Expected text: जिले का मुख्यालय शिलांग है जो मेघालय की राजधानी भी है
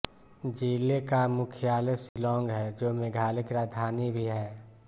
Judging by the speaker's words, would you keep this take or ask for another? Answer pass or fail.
pass